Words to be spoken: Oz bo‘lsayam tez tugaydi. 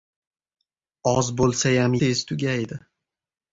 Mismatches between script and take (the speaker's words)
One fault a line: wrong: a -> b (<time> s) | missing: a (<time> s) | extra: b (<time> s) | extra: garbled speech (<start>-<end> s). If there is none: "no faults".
no faults